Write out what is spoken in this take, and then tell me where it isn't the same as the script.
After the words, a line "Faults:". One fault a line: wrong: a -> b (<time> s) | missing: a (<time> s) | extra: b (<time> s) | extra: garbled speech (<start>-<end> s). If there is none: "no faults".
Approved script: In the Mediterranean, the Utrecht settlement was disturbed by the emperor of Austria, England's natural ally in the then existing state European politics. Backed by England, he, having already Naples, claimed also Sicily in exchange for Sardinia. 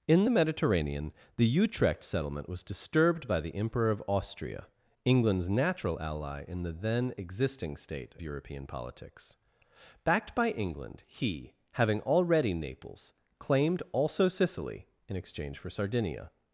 In the Mediterranean, the Utrecht settlement was disturbed by the emperor of Austria, England's natural ally in the then existing state European politics. Backed by England, he, having already Naples, claimed also Sicily in exchange for Sardinia.
Faults:
no faults